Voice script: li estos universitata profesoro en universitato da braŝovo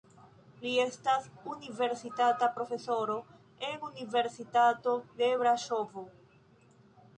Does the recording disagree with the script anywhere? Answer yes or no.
yes